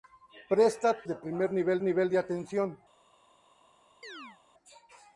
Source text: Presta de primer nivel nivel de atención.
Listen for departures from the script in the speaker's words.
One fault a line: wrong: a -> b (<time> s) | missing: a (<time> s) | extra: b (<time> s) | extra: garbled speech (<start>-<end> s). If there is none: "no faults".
no faults